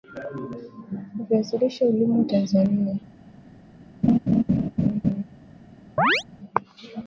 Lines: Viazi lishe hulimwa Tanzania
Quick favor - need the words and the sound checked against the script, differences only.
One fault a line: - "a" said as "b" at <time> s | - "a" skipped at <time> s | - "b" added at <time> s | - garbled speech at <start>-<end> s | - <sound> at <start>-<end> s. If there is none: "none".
- laugh at 4.0-5.2 s
- chirp at 6.0-6.2 s